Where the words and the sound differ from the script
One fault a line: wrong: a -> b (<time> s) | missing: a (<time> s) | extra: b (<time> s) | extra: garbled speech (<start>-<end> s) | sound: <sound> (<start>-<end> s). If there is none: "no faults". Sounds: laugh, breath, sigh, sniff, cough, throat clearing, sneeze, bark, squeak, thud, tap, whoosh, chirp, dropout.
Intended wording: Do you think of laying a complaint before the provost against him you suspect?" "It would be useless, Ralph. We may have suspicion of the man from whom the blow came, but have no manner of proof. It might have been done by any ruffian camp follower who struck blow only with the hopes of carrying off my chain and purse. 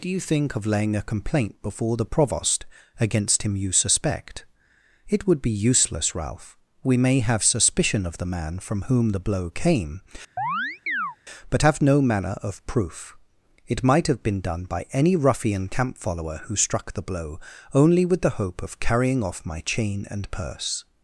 sound: chirp (10.4-11.2 s)
extra: the (16.9 s)
wrong: hopes -> hope (18.4 s)